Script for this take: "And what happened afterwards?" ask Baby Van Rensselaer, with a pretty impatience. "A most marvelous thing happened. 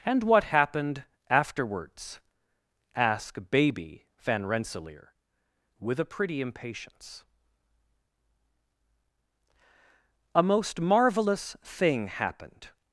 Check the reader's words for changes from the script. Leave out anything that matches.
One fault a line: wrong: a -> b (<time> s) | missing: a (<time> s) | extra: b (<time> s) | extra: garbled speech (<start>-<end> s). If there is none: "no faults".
no faults